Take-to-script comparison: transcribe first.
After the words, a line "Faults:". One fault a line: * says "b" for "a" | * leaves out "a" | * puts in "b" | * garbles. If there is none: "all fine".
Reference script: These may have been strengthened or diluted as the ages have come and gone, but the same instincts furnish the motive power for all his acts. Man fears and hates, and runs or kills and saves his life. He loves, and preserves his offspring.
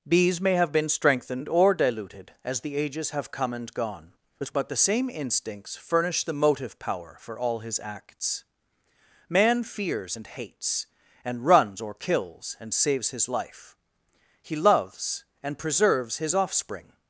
Bees may have been strengthened or diluted as the ages have come and gone, but the same instincts furnish the motive power for all his acts. Man fears and hates, and runs or kills and saves his life. He loves, and preserves his offspring.
Faults:
* says "Bees" for "These"